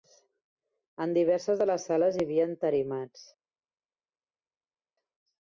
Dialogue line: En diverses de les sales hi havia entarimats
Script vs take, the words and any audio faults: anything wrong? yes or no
no